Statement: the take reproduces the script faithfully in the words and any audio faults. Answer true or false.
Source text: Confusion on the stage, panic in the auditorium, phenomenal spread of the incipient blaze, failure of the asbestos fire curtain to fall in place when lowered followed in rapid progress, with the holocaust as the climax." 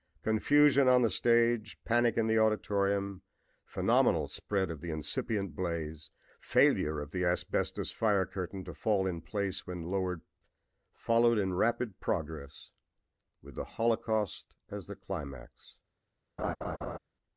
false